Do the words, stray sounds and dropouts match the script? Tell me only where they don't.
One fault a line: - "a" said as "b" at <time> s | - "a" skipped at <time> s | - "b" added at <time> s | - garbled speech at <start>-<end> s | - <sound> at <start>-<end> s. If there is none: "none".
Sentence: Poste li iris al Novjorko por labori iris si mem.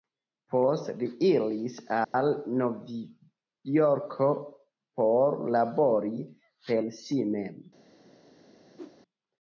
- dropout at 2.0-2.1 s
- "iris" said as "per" at 6.7 s
- whoosh at 8.8-9.0 s